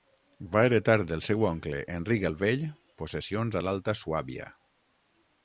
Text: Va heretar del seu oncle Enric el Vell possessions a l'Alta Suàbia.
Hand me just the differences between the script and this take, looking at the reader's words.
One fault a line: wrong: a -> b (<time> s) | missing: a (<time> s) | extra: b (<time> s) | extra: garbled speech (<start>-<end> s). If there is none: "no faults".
no faults